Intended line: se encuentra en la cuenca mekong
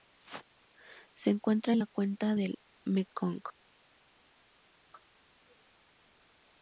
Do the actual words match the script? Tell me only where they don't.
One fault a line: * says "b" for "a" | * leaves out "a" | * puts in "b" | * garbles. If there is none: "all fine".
* puts in "del"